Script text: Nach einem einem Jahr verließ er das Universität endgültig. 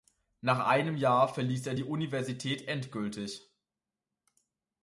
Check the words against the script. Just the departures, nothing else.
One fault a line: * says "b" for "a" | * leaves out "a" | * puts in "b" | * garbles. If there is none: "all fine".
* leaves out "einem"
* says "die" for "das"